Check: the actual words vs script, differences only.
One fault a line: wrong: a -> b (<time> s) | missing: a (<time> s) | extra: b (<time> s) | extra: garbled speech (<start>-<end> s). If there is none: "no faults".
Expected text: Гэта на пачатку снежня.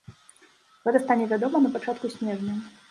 extra: стане вядома (1.1 s)